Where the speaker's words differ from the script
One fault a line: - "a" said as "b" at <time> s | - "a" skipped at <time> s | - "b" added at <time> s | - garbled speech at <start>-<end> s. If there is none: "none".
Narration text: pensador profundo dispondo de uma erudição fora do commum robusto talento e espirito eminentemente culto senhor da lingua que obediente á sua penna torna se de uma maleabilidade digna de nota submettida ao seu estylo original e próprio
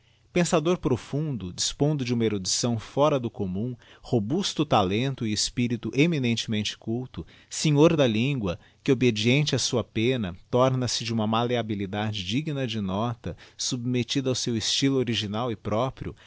none